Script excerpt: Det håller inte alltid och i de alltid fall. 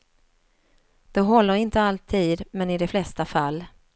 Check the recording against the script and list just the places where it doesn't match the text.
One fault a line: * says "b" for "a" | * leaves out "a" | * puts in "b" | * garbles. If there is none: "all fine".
* says "men" for "och"
* says "flesta" for "alltid"